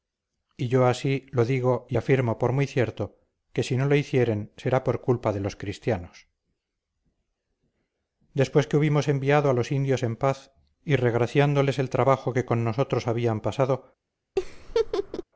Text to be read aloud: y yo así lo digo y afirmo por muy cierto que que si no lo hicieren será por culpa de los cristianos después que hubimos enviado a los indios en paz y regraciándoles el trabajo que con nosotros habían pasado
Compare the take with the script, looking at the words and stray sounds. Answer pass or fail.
fail